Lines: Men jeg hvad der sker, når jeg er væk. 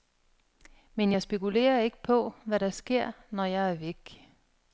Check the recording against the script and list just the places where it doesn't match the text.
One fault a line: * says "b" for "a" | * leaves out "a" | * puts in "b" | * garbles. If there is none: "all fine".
* puts in "spekulerer ikke på"